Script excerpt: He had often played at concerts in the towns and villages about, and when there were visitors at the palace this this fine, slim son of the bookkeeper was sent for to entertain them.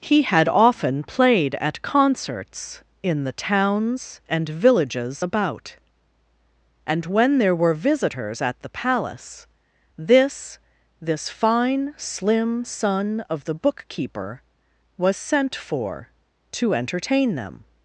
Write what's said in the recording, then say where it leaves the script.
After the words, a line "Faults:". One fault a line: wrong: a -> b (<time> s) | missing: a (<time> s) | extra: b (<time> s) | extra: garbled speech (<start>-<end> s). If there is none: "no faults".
He had often played at concerts in the towns and villages about, and when there were visitors at the palace this this fine, slim son of the bookkeeper was sent for to entertain them.
Faults:
no faults